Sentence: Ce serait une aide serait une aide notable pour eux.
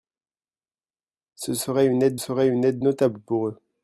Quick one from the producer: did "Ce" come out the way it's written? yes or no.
yes